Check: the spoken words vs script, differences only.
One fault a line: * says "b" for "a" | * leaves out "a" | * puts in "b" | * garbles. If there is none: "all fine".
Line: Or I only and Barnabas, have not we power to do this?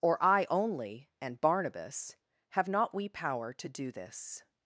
all fine